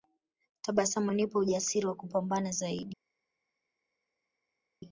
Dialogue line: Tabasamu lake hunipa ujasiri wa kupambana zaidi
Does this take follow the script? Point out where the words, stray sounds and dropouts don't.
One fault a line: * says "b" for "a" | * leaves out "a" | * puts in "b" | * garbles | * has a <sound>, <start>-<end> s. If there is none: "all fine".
* leaves out "lake"